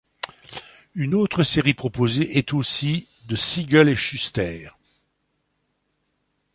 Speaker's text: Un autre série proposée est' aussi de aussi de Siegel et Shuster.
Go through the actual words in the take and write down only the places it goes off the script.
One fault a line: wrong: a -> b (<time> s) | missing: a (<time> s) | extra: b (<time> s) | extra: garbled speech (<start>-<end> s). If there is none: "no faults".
wrong: Un -> Une (0.9 s)
missing: aussi de (3.3 s)